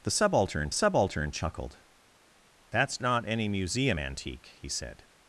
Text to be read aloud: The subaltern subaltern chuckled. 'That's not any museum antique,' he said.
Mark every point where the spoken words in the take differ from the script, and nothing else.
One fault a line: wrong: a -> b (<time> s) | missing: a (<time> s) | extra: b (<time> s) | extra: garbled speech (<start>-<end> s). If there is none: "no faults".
no faults